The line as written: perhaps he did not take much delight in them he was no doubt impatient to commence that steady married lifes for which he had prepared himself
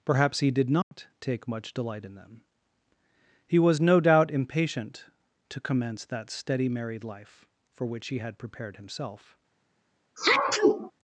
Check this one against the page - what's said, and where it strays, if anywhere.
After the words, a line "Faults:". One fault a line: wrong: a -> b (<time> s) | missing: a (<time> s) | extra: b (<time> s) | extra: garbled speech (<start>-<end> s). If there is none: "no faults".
perhaps he did not take much delight in them he was no doubt impatient to commence that steady married life for which he had prepared himself
Faults:
wrong: lifes -> life (7.0 s)